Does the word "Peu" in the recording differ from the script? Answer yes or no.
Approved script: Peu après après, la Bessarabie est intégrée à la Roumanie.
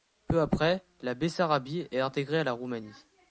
no